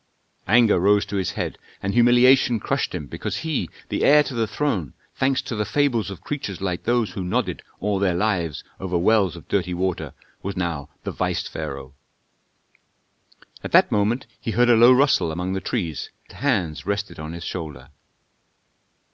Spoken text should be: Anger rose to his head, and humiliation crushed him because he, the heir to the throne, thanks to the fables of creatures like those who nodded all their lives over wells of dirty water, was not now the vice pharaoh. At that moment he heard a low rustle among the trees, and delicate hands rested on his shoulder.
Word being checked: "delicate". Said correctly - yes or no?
no